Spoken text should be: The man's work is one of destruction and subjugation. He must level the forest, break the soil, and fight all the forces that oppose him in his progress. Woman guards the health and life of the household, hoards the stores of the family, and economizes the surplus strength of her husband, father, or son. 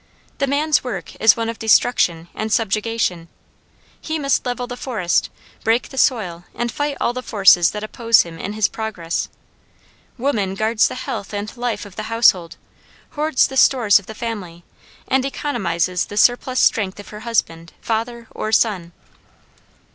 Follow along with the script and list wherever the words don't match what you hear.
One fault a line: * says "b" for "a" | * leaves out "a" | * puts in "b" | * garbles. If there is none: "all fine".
all fine